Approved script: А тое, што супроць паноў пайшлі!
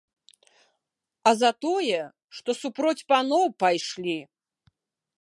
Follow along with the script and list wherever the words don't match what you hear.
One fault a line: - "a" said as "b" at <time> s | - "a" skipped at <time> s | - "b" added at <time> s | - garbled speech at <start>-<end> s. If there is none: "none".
- "за" added at 1.4 s